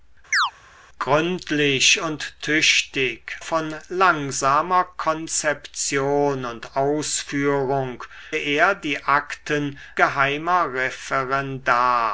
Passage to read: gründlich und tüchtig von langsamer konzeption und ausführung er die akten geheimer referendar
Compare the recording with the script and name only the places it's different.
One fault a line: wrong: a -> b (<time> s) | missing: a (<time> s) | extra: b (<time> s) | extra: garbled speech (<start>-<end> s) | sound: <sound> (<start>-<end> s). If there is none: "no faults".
sound: chirp (0.3-0.5 s)